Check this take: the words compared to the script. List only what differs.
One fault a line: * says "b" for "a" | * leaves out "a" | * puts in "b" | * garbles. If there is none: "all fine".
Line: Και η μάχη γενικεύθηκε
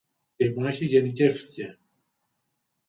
all fine